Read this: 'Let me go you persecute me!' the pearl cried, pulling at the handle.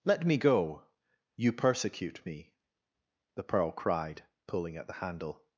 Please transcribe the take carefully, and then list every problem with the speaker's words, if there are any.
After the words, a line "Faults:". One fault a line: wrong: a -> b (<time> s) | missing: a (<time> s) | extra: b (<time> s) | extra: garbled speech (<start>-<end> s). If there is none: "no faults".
'Let me go you persecute me!' the pearl cried, pulling at the handle.
Faults:
no faults